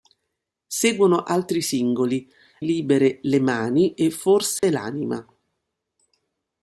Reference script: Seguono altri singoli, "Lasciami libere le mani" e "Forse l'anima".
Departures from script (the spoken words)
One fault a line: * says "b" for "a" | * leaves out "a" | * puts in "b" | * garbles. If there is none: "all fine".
* leaves out "Lasciami"